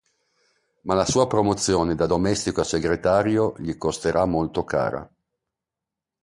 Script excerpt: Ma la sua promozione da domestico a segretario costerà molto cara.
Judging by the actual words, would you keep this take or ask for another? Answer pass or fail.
fail